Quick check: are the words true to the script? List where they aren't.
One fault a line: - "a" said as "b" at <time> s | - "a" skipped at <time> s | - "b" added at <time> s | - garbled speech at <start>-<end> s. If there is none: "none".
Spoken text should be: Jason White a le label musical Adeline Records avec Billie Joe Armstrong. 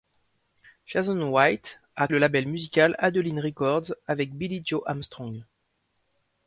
none